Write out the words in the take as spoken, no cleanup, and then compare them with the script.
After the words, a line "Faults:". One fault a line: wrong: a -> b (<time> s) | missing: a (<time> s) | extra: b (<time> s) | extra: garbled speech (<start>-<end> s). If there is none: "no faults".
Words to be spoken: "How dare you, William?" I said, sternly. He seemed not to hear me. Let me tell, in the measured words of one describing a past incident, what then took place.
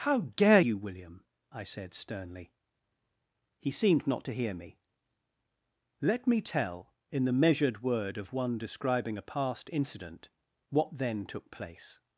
"How dare you, William?" I said, sternly. He seemed not to hear me. Let me tell, in the measured word of one describing a past incident, what then took place.
Faults:
wrong: words -> word (7.8 s)